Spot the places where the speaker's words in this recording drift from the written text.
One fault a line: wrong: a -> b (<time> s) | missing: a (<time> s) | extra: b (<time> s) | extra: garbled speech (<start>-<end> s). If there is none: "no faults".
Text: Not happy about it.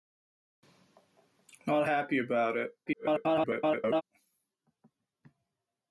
extra: garbled speech (2.9-4.0 s)